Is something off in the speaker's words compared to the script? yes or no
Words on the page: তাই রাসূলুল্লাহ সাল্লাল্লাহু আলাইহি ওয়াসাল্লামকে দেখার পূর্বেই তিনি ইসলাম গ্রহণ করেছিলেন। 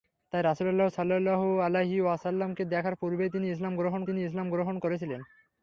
yes